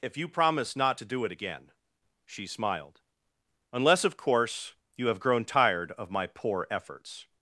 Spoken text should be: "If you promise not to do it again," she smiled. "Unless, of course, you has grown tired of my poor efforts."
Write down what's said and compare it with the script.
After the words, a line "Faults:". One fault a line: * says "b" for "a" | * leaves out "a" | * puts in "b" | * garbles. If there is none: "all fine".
"If you promise not to do it again," she smiled. "Unless, of course, you have grown tired of my poor efforts."
Faults:
* says "have" for "has"